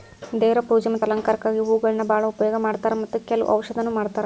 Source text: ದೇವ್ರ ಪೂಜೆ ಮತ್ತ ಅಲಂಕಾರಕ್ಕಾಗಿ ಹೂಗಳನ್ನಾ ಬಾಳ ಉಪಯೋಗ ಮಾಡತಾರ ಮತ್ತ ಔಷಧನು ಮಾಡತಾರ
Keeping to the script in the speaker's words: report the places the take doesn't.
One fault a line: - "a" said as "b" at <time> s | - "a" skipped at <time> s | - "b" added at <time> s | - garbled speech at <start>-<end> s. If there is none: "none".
- "ಕೆಲ್ವ" added at 3.3 s